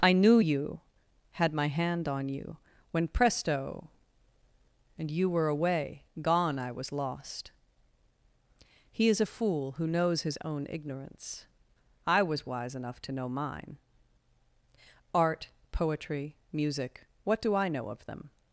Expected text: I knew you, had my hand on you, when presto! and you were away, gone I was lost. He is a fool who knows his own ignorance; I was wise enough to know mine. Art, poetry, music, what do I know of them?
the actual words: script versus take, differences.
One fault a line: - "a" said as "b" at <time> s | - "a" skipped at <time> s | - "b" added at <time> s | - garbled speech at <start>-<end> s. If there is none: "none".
none